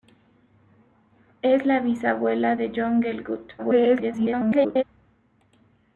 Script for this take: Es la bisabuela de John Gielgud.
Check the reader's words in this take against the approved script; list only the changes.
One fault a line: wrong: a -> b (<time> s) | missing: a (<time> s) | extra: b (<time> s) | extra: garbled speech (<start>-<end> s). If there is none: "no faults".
extra: garbled speech (3.6-4.8 s)